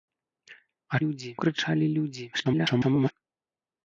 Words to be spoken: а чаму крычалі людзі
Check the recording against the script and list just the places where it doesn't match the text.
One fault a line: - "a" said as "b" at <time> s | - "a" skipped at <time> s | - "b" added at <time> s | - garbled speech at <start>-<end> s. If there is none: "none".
- "чаму" said as "людзі" at 1.0 s
- garbled speech at 2.3-3.1 s